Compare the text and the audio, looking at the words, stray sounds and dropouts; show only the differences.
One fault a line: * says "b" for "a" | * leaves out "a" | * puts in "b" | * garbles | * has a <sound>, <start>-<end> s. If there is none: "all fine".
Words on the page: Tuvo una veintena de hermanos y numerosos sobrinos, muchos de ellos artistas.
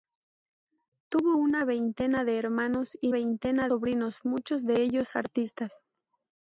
* says "veintena" for "numerosos"